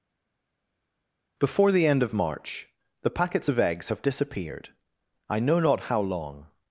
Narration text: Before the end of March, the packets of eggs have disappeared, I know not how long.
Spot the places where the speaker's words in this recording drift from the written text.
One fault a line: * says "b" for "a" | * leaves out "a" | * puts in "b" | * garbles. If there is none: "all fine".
all fine